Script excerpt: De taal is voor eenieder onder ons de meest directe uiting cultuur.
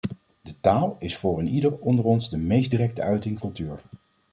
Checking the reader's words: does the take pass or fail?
pass